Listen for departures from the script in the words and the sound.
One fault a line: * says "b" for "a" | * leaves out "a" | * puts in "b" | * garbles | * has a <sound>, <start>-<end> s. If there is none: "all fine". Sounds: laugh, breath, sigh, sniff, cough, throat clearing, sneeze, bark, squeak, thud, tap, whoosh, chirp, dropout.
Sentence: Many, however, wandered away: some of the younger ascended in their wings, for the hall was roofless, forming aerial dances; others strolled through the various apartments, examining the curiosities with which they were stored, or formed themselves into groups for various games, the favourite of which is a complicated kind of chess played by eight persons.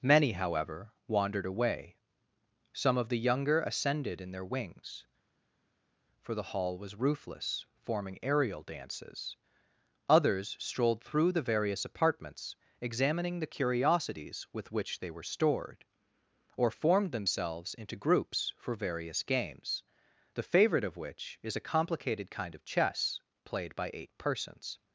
all fine